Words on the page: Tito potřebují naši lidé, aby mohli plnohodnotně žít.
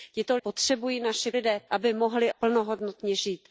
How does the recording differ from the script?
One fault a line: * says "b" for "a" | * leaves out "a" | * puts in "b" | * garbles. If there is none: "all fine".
all fine